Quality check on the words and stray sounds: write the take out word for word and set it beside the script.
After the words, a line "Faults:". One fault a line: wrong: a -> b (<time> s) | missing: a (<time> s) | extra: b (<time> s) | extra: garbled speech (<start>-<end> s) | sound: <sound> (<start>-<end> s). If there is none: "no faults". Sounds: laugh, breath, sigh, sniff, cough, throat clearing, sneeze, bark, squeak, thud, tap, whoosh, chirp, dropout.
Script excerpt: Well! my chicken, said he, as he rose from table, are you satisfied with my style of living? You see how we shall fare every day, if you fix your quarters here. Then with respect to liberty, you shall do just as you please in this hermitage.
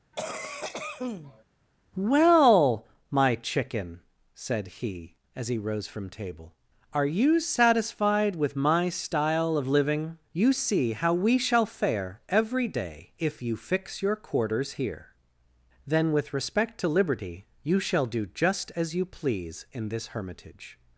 Well! my chicken, said he, as he rose from table, are you satisfied with my style of living? You see how we shall fare every day, if you fix your quarters here. Then with respect to liberty, you shall do just as you please in this hermitage.
Faults:
sound: cough (0.1-1.4 s)